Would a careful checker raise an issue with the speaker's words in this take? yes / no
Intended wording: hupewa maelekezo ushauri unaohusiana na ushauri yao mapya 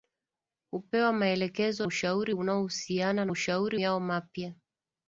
no